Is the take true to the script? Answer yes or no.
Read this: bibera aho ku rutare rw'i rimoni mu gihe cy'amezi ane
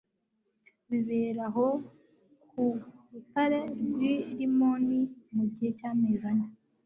yes